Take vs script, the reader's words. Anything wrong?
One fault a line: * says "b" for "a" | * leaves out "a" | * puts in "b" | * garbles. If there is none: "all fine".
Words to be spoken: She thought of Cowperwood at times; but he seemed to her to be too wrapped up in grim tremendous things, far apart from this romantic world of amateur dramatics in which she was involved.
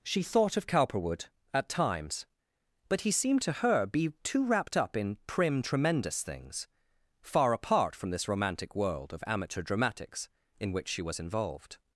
* leaves out "to"
* says "prim" for "grim"